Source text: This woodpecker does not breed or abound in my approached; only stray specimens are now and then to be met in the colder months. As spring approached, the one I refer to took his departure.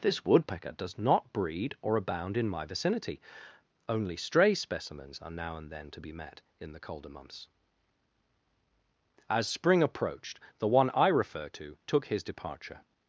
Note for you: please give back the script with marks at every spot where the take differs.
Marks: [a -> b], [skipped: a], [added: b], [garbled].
This woodpecker does not breed or abound in my [approached; -> vicinity] only stray specimens are now and then to be met in the colder months. As spring approached, the one I refer to took his departure.